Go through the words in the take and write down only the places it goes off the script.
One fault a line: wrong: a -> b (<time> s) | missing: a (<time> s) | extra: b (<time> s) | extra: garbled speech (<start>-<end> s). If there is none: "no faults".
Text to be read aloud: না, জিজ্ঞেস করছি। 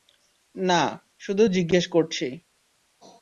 extra: শুধু (1.2 s)